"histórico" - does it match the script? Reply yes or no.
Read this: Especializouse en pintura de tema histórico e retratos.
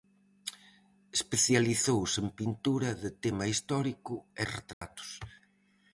yes